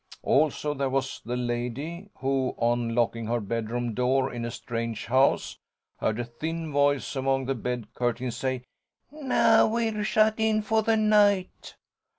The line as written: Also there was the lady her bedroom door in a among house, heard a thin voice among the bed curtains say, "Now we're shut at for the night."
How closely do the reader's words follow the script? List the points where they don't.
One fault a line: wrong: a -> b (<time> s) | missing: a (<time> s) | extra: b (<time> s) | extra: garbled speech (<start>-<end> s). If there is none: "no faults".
extra: who on locking (2.1 s)
wrong: among -> strange (4.5 s)
wrong: at -> in (10.4 s)